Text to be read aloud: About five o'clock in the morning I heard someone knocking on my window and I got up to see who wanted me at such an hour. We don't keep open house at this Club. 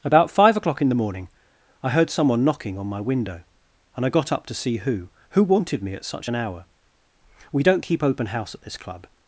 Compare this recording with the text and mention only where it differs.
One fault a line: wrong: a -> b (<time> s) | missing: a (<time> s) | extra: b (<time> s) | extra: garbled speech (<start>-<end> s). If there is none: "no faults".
extra: who (5.3 s)